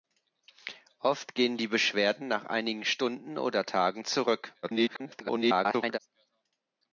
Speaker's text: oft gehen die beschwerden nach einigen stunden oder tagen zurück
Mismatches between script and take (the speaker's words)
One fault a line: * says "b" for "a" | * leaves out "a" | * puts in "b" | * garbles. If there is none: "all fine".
* garbles